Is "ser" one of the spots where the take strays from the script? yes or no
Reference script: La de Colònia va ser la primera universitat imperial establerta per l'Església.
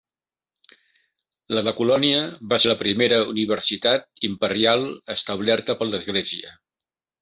yes